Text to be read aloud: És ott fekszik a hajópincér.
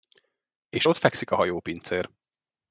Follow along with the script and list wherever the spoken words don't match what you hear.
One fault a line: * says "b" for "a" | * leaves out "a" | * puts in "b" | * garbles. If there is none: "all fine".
all fine